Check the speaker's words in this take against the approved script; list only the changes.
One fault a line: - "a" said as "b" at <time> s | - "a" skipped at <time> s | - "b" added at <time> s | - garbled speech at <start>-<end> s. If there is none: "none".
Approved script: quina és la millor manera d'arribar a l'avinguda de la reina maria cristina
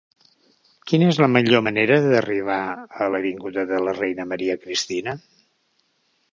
none